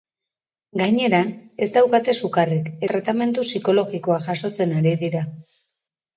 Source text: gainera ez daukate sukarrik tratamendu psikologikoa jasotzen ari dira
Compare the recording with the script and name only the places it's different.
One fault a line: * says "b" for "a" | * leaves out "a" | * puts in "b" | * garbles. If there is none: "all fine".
all fine